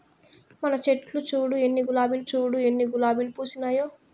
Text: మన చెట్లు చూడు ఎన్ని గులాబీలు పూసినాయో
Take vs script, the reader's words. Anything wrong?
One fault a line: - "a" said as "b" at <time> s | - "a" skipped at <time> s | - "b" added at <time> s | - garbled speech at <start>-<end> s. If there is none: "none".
- "చూడు ఎన్ని గులాబీలు" added at 2.3 s